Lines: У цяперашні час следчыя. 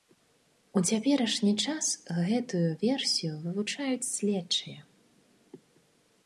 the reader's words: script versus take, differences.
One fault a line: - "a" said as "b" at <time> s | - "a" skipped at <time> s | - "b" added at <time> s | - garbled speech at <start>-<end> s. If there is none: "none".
- "гэтую версію вывучаюць" added at 2.3 s